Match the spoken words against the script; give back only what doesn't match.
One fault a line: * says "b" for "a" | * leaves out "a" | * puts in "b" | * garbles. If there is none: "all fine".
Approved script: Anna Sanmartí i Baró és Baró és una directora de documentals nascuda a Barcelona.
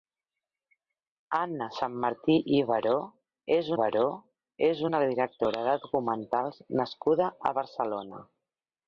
all fine